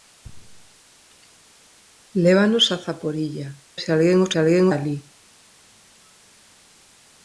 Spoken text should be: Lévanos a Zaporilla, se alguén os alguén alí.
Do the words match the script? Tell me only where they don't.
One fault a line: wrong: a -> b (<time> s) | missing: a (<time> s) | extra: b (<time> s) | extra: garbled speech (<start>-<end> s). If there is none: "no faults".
no faults